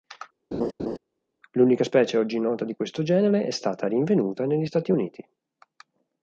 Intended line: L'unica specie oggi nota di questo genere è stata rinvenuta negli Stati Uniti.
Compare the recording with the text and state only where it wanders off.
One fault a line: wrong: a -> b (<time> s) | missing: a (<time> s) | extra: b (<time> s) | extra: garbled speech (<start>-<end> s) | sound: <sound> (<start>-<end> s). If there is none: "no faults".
sound: laugh (0.5-1.0 s)